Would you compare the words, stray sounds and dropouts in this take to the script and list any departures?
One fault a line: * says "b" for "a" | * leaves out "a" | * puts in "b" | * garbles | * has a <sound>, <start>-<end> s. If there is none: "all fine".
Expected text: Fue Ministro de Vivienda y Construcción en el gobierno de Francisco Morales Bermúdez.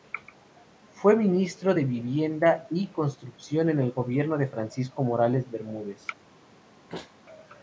* has a sneeze, 6.9-7.2 s